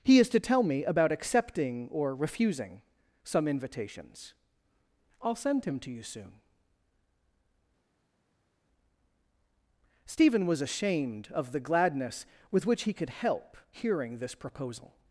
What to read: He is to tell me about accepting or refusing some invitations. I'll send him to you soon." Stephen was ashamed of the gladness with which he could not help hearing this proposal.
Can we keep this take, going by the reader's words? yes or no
no